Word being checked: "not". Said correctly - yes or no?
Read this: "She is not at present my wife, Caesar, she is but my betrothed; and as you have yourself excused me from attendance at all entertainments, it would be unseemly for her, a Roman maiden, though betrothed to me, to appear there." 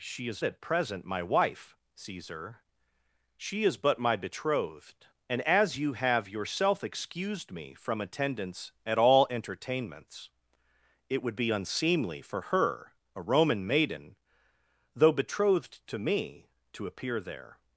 no